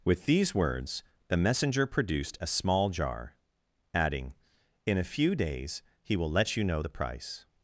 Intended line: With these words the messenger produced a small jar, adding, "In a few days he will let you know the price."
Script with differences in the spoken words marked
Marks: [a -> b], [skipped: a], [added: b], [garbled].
With these words the messenger produced a small jar, adding, "In a few days he will let you know the price."